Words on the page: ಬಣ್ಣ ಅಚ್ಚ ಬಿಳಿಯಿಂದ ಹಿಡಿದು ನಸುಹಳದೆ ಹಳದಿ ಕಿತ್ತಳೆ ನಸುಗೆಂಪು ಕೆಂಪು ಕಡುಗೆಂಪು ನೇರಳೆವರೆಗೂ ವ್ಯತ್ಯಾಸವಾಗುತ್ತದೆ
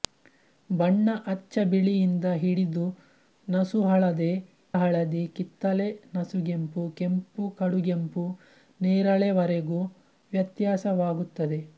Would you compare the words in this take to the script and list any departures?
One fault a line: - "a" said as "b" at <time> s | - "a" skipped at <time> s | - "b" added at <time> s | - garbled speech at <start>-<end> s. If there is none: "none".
none